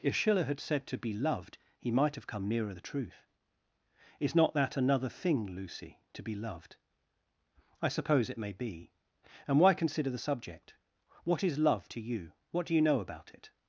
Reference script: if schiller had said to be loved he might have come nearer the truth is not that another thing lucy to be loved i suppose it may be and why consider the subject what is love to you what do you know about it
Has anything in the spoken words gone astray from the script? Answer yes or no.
no